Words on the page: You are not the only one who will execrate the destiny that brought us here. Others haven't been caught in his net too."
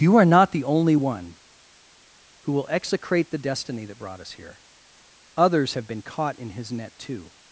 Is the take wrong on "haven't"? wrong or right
wrong